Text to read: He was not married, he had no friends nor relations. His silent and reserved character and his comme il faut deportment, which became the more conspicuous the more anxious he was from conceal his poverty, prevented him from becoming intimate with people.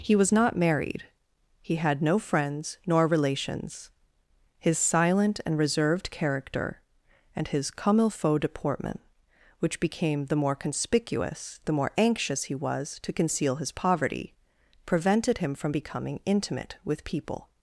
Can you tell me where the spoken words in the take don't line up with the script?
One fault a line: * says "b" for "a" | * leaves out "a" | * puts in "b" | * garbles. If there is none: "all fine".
* says "to" for "from"